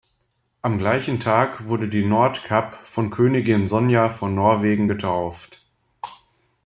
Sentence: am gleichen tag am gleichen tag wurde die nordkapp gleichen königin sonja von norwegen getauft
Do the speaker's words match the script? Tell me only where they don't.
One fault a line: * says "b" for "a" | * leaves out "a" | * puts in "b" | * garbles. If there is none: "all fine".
* leaves out "am gleichen tag"
* says "von" for "gleichen"